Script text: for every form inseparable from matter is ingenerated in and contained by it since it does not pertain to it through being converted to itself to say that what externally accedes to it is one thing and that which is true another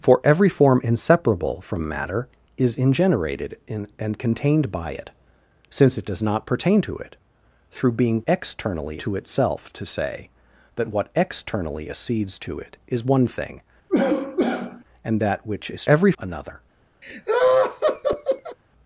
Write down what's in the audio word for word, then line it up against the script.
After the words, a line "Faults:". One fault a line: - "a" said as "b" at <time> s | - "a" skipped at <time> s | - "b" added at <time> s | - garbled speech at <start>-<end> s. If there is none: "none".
for every form inseparable from matter is ingenerated in and contained by it since it does not pertain to it through being externally to itself to say that what externally accedes to it is one thing and that which is every another
Faults:
- "converted" said as "externally" at 8.3 s
- "true" said as "every" at 15.9 s